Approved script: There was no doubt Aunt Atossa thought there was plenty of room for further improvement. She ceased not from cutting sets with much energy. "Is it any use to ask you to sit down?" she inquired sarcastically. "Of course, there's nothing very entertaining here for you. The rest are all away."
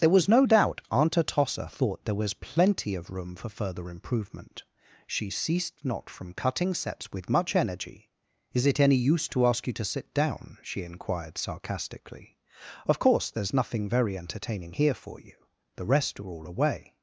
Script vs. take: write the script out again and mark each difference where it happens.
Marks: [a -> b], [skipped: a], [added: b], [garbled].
There was no doubt Aunt Atossa thought there was plenty of room for further improvement. She ceased not from cutting sets with much energy. "Is it any use to ask you to sit down?" she inquired sarcastically. "Of course, there's nothing very entertaining here for you. The rest are all away."